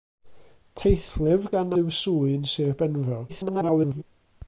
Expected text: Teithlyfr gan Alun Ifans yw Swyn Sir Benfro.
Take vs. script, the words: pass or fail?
fail